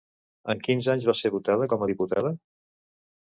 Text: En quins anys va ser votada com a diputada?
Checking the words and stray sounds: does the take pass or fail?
pass